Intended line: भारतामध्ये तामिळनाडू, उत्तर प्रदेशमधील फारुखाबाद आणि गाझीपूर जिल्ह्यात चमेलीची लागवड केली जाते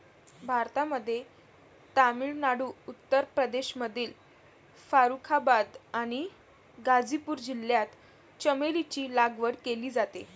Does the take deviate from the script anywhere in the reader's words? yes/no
no